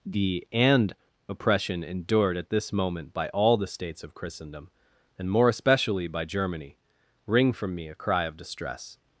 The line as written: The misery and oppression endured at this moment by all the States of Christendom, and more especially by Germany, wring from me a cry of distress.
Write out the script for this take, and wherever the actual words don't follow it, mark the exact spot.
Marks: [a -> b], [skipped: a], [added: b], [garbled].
The [skipped: misery] and oppression endured at this moment by all the States of Christendom, and more especially by Germany, wring from me a cry of distress.